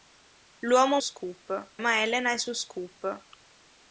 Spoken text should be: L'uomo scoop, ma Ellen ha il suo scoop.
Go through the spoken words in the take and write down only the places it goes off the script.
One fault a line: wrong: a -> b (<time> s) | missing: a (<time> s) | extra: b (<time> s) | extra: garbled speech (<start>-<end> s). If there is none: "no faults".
no faults